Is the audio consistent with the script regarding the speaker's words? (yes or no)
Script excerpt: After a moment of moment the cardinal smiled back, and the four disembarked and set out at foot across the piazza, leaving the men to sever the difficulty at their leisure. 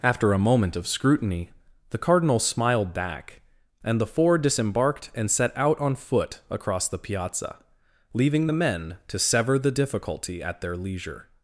no